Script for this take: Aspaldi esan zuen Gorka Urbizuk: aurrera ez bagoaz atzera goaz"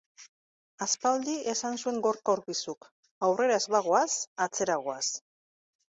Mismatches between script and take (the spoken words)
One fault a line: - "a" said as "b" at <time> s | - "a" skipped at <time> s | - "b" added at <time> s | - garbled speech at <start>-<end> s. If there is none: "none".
none